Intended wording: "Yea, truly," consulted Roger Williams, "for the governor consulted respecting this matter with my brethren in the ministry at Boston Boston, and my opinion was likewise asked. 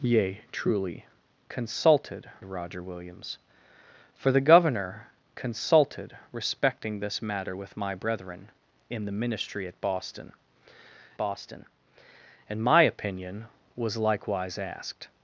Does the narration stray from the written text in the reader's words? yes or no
no